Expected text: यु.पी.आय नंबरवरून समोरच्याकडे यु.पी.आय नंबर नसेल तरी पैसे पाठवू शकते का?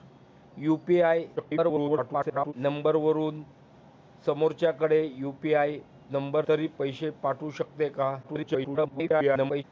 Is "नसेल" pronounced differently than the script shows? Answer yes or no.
yes